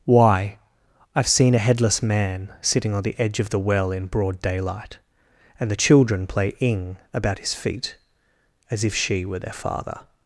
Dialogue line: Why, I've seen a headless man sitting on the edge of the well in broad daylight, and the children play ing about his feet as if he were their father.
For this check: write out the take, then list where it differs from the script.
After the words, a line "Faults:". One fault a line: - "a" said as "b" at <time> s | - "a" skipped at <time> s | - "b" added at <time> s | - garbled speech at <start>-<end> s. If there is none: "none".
Why, I've seen a headless man sitting on the edge of the well in broad daylight, and the children play ing about his feet as if she were their father.
Faults:
- "he" said as "she" at 8.9 s